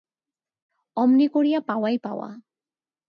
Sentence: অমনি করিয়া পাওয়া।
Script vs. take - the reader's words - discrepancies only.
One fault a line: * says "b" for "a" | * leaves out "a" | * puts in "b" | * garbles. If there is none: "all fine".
* puts in "পাওয়াই"